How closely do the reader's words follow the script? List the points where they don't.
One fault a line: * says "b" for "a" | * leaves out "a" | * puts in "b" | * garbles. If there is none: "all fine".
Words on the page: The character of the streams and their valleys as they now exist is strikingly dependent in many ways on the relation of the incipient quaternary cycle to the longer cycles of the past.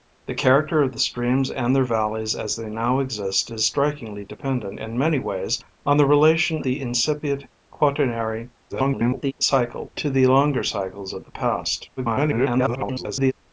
* leaves out "of"
* garbles
* garbles